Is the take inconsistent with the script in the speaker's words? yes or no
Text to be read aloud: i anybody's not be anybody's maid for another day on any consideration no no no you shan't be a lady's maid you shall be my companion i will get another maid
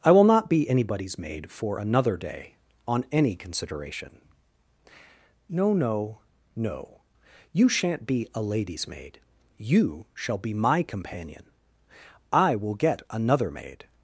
yes